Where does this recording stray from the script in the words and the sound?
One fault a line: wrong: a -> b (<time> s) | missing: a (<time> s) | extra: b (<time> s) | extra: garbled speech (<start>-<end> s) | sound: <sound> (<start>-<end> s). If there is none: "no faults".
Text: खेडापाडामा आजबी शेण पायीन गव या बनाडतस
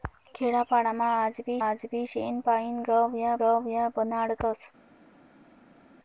extra: आजबी (1.6 s)
extra: गव या (3.4 s)